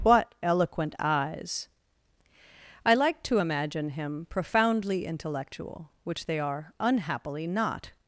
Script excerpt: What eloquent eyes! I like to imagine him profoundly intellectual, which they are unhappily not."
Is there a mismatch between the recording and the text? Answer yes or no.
no